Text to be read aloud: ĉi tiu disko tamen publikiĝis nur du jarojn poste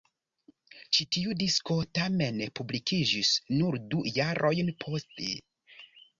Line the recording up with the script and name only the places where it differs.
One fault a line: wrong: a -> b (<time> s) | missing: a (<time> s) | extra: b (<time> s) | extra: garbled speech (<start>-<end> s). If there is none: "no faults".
no faults